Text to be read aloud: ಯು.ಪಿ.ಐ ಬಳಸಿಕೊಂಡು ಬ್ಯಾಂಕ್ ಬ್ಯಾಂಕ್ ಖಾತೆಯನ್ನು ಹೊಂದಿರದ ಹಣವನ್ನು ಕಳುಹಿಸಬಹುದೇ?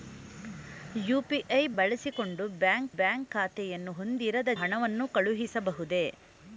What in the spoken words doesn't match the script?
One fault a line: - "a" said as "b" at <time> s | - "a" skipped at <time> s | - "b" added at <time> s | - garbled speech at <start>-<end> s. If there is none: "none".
none